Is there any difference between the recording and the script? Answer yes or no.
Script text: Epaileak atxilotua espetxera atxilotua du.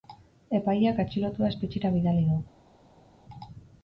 yes